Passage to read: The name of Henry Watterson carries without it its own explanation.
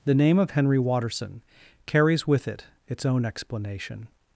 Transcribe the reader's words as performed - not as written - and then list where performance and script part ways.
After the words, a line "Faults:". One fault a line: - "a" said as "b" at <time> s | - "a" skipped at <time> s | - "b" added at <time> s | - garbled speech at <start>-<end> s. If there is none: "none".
The name of Henry Watterson carries with it its own explanation.
Faults:
- "without" said as "with" at 2.2 s